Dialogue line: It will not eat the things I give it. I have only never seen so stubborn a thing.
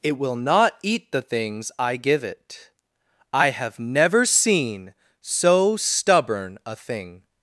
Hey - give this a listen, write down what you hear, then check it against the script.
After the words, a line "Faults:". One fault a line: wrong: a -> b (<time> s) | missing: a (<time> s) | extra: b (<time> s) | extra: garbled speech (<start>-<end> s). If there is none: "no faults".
It will not eat the things I give it. I have never seen so stubborn a thing.
Faults:
missing: only (3.8 s)